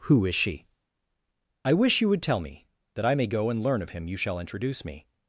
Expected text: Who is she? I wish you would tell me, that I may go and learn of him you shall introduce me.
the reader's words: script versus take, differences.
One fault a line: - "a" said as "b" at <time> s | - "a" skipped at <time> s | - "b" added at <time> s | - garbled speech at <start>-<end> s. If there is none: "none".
none